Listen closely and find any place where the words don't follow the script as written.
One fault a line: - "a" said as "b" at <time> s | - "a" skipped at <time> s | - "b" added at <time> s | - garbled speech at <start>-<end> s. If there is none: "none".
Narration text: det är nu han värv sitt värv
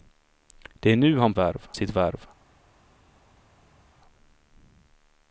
none